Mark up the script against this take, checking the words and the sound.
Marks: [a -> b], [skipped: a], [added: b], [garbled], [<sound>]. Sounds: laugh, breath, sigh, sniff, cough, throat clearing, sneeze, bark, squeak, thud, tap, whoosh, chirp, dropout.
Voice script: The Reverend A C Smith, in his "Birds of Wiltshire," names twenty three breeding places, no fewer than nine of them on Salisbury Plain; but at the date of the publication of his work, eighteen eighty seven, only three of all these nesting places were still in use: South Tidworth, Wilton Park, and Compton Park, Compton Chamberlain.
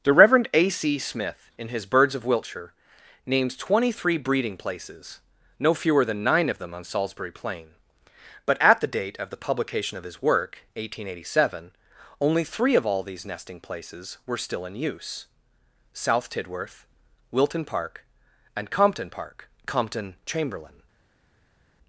The Reverend A C Smith, in his "Birds of Wiltshire," names twenty three breeding places, no fewer than nine of them on Salisbury Plain; but at the date of the publication of his work, eighteen eighty seven, only three of all these nesting places were still in use: South Tidworth, Wilton Park, and Compton Park, Compton Chamberlain.